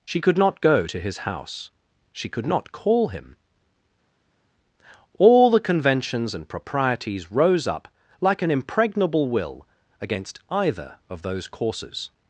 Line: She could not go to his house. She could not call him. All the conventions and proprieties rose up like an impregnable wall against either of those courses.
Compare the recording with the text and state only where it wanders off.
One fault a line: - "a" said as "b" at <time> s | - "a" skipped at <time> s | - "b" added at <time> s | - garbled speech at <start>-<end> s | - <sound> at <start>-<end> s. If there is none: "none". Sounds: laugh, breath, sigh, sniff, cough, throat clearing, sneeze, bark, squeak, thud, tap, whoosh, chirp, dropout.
- "wall" said as "will" at 9.3 s